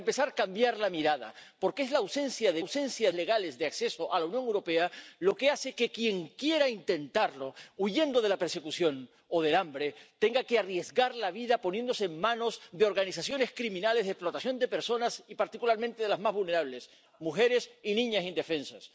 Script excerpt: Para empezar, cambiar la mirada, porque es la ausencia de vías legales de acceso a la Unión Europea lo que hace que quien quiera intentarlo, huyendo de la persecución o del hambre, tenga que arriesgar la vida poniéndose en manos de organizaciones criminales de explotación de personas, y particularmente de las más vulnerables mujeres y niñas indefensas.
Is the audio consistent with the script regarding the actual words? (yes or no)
no